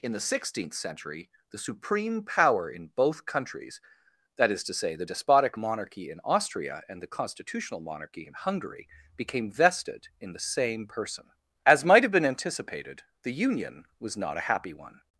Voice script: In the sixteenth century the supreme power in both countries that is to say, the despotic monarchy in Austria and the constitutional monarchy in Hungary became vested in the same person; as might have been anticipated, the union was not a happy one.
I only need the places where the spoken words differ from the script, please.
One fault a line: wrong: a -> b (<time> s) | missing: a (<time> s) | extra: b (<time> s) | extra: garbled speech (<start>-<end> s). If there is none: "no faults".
no faults